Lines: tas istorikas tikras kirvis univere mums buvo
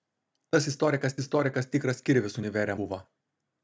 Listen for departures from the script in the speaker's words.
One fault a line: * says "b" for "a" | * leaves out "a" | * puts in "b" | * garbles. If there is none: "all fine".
* puts in "istorikas"
* leaves out "mums"